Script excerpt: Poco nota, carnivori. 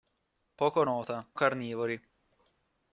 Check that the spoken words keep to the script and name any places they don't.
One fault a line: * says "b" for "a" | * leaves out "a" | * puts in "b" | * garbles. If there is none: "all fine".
all fine